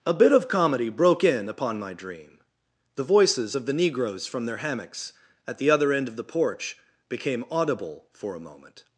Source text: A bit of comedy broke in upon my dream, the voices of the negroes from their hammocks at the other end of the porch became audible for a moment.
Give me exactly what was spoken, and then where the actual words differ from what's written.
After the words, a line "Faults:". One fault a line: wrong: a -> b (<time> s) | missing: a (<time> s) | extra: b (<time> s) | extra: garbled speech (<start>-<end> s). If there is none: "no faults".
A bit of comedy broke in upon my dream, the voices of the negroes from their hammocks at the other end of the porch became audible for a moment.
Faults:
no faults